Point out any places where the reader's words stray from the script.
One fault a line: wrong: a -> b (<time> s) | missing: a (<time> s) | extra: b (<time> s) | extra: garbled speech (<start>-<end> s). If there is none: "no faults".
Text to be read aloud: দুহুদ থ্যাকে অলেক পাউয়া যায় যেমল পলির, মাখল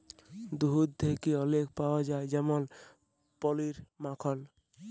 no faults